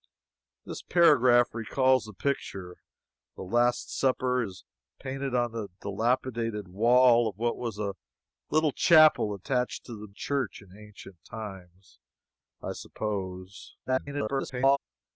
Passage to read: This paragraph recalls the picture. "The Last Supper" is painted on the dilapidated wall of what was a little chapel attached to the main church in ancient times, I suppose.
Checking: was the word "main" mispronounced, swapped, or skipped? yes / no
yes